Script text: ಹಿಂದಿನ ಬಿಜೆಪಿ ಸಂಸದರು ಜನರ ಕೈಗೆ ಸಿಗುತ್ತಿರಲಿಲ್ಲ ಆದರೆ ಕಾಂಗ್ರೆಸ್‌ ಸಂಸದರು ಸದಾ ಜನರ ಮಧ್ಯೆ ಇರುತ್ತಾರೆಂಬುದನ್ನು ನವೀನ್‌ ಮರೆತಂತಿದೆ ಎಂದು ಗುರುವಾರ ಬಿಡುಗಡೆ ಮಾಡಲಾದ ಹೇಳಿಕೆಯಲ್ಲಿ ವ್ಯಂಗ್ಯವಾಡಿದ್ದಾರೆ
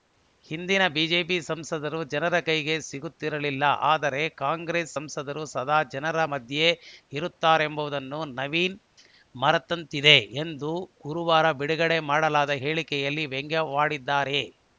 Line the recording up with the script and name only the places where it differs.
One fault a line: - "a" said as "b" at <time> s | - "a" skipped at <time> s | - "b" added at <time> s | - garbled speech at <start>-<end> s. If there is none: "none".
none